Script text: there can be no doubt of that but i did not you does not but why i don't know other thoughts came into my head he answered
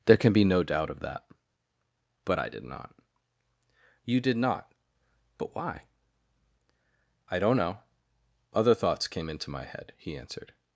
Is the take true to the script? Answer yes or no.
no